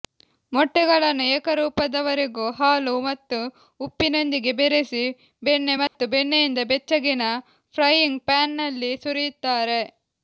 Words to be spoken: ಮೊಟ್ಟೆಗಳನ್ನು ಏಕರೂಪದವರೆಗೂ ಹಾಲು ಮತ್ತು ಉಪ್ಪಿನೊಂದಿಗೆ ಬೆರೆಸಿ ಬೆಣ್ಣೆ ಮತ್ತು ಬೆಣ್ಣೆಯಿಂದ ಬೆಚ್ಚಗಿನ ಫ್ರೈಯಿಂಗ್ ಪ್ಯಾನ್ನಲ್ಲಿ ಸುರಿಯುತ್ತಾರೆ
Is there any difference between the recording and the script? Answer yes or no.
no